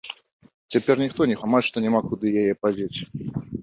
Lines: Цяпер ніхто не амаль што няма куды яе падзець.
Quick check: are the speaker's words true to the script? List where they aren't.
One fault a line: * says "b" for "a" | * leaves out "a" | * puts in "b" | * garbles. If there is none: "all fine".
all fine